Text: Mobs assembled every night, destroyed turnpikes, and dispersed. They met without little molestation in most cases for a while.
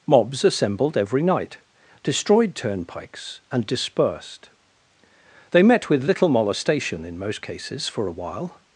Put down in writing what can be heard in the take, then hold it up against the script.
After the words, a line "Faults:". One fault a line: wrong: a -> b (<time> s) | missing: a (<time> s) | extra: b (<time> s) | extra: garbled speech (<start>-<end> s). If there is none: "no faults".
Mobs assembled every night, destroyed turnpikes, and dispersed. They met with little molestation in most cases for a while.
Faults:
wrong: without -> with (5.9 s)